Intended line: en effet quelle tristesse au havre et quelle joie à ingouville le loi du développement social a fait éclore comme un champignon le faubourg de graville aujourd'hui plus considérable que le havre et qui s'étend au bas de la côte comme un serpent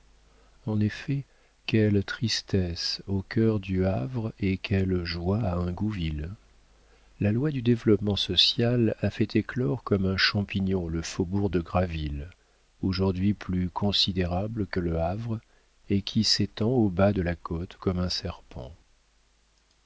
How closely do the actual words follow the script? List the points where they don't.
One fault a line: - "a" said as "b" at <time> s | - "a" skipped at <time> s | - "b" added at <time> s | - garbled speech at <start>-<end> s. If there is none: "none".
- "cœur du" added at 3.2 s
- "le" said as "la" at 7.2 s